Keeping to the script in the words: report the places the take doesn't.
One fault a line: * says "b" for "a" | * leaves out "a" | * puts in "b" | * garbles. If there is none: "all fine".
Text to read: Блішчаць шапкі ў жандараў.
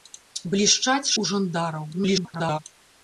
* leaves out "шапкі"
* garbles